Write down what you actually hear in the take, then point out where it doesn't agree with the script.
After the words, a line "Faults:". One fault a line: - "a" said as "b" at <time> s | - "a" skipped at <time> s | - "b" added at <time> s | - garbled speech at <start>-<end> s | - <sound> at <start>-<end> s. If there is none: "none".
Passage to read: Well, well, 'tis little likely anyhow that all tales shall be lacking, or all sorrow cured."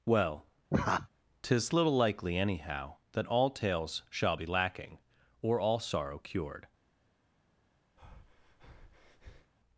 Well, 'tis little likely anyhow that all tales shall be lacking, or all sorrow cured."
Faults:
- "well" skipped at 0.5 s
- laugh at 0.7-1.1 s
- breath at 8.0-9.5 s